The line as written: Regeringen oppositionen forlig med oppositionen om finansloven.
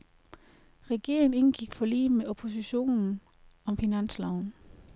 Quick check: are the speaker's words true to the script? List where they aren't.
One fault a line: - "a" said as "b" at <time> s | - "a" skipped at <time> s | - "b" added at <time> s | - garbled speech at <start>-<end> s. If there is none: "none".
- "oppositionen" said as "indgik" at 1.3 s